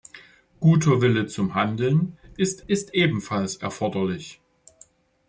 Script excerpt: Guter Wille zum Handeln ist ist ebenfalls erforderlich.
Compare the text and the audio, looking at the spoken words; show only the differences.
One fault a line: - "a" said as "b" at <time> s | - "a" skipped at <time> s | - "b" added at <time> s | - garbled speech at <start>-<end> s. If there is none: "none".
none